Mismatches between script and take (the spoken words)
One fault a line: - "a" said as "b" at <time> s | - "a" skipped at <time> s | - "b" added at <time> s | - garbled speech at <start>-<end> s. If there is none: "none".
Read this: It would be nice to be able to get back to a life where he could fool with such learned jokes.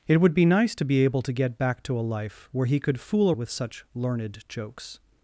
none